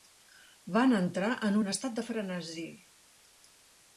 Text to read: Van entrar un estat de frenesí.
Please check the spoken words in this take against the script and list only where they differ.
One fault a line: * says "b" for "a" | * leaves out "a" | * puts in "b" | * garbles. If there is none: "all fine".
* puts in "en"